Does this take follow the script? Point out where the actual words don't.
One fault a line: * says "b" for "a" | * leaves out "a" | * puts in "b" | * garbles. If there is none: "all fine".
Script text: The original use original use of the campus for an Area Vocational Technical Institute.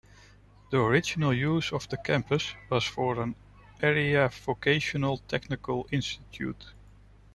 * leaves out "original use"
* puts in "was"